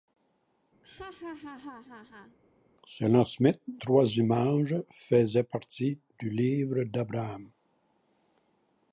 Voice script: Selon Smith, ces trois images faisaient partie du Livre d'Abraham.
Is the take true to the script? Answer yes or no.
no